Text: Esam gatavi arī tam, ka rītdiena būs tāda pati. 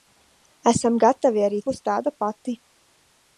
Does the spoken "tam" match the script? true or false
false